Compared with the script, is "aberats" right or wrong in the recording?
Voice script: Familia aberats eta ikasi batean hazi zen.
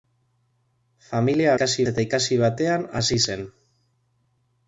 wrong